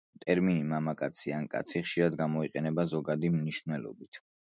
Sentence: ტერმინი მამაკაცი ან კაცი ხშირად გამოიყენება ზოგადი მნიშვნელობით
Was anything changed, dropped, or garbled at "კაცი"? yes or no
no